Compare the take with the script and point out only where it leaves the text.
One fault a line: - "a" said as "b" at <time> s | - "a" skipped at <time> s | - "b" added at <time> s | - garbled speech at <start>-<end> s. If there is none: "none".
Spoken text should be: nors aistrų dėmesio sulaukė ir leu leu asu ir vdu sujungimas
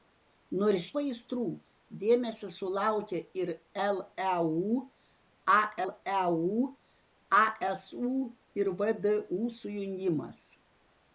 none